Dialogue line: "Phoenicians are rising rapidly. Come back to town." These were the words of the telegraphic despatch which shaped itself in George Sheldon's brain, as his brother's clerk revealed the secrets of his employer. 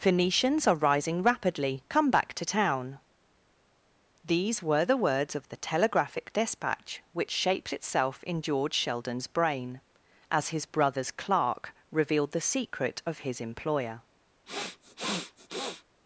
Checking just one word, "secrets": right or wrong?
wrong